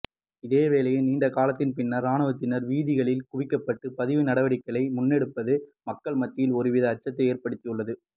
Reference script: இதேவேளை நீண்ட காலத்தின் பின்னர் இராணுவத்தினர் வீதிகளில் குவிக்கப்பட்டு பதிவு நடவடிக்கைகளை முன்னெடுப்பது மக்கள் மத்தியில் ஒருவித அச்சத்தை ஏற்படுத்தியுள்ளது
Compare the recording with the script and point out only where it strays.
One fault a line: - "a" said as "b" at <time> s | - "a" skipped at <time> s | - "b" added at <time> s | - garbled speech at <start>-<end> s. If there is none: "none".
none